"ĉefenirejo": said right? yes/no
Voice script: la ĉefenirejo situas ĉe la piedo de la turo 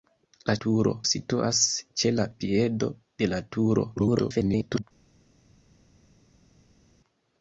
no